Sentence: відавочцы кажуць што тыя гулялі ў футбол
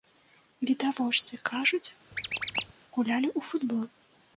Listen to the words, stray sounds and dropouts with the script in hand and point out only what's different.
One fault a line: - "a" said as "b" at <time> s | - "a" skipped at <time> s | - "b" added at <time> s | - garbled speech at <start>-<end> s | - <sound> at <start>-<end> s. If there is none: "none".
- "што тыя" skipped at 1.9 s
- squeak at 2.1-2.7 s